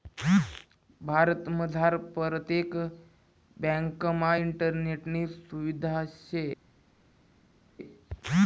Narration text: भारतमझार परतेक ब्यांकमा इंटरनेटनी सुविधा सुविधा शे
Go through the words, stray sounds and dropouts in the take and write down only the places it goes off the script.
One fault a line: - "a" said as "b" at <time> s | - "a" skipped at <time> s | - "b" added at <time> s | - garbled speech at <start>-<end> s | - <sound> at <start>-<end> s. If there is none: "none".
- "सुविधा" skipped at 6.0 s